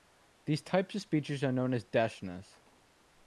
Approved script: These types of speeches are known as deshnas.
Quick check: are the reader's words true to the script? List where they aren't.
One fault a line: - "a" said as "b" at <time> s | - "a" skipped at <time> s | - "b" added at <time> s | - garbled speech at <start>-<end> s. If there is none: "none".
none